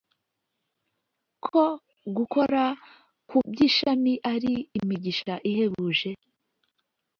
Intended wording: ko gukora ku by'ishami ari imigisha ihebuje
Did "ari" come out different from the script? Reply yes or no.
no